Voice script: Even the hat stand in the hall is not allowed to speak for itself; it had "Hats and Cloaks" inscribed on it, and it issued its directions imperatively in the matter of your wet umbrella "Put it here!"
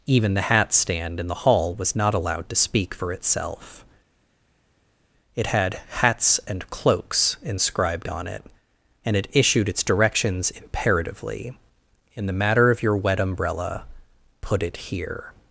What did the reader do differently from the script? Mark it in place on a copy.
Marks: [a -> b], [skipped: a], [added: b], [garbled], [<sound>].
Even the hat stand in the hall [is -> was] not allowed to speak for itself; it had "Hats and Cloaks" inscribed on it, and it issued its directions imperatively in the matter of your wet umbrella "Put it here!"